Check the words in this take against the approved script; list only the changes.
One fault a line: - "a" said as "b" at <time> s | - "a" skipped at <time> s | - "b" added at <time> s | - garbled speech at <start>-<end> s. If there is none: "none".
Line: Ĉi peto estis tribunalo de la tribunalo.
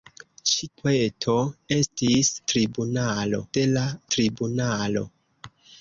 none